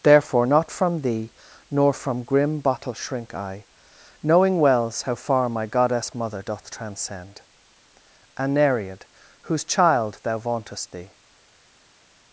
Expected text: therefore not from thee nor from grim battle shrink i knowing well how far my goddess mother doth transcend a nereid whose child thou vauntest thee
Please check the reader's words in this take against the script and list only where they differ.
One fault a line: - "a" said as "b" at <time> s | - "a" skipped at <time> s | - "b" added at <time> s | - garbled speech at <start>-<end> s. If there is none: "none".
- "battle" said as "bottle" at 2.6 s
- "well" said as "wells" at 4.6 s